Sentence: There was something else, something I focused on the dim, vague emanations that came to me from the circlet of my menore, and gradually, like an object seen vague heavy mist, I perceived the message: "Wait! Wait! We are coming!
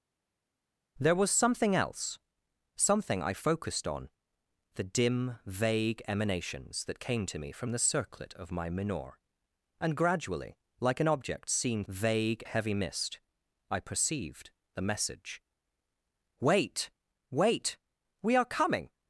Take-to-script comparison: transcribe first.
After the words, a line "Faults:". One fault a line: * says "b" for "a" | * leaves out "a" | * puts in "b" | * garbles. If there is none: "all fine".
There was something else, something I focused on the dim, vague emanations that came to me from the circlet of my menore, and gradually, like an object seen vague heavy mist, I perceived the message: "Wait! Wait! We are coming!
Faults:
all fine